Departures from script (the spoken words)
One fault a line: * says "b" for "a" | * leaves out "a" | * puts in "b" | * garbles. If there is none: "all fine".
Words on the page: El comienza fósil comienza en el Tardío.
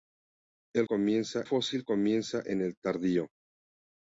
all fine